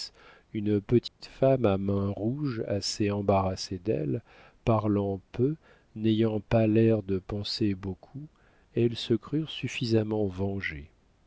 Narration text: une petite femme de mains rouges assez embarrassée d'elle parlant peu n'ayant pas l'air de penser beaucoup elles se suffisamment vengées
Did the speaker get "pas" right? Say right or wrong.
right